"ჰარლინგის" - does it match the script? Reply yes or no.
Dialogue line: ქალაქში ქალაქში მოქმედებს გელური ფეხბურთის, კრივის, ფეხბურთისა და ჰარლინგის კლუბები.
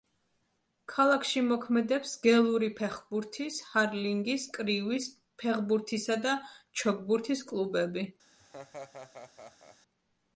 no